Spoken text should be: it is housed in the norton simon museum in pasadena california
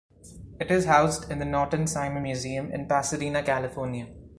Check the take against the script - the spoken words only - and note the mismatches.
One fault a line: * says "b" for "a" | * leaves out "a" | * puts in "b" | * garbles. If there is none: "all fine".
all fine